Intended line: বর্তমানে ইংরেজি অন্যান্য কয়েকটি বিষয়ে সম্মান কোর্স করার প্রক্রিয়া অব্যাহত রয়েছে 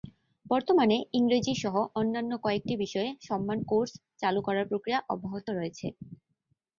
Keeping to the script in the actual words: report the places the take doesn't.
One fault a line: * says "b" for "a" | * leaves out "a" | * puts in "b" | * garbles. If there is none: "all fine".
* puts in "সহ"
* puts in "চালু"